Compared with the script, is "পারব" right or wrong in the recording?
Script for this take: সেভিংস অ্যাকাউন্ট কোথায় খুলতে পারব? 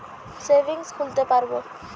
right